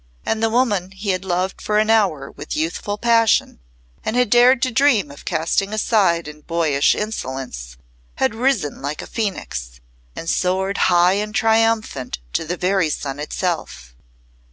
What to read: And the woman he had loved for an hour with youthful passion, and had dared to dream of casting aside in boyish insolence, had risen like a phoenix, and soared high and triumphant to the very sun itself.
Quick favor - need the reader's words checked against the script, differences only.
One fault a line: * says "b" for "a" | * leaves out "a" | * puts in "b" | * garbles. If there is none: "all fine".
all fine